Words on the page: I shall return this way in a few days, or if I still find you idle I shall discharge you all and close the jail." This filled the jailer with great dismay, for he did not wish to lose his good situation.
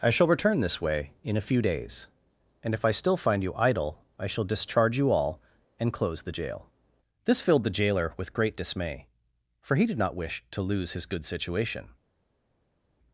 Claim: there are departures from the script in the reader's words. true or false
true